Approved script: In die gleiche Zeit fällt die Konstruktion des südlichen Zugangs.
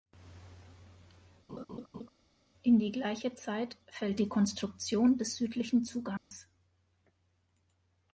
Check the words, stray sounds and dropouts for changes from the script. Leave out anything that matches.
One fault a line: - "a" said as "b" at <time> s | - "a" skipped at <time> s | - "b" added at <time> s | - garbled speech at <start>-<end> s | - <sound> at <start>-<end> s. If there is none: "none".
- laugh at 1.5-2.1 s
- dropout at 6.2-6.3 s